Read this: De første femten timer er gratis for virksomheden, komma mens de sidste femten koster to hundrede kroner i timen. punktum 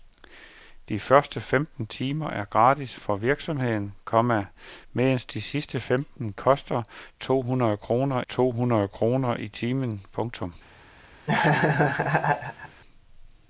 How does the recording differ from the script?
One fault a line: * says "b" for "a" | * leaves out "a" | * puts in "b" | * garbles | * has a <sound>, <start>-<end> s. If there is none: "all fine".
* puts in "to hundrede kroner"
* has a laugh, 11.3-12.8 s